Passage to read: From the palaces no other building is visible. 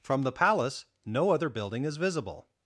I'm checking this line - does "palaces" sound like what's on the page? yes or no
no